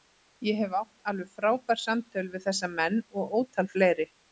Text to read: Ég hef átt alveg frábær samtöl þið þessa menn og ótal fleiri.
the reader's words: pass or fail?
fail